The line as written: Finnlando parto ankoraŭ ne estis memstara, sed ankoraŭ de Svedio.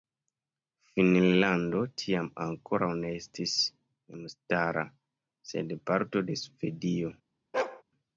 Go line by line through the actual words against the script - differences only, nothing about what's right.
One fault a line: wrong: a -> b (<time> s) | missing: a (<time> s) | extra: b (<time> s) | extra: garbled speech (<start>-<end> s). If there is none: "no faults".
wrong: parto -> tiam (2.0 s)
wrong: ankoraŭ -> parto (5.9 s)